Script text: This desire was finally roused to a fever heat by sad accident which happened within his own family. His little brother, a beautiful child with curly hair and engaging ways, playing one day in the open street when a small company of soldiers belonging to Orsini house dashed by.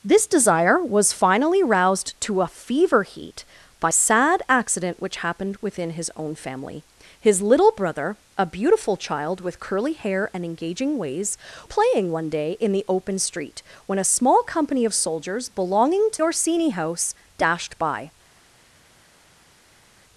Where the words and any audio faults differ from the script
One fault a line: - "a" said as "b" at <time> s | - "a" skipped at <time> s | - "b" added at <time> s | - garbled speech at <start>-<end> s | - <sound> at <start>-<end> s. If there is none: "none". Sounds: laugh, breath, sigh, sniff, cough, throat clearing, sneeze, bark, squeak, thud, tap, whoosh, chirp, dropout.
none